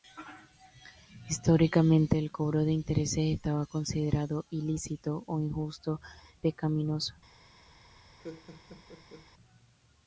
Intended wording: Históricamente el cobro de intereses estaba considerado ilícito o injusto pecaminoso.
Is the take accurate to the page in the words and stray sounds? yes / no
no